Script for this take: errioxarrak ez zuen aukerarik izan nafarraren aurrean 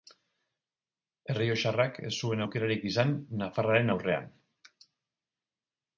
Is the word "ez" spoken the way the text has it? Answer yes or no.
yes